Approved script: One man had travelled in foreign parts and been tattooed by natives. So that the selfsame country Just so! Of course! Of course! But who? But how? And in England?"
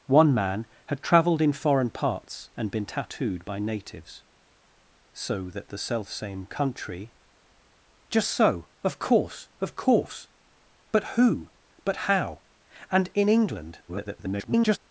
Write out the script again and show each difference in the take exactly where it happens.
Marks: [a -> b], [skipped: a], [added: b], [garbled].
One man had travelled in foreign parts and been tattooed by natives. So that the selfsame country Just so! Of course! Of course! But who? But how? And in England?" [garbled]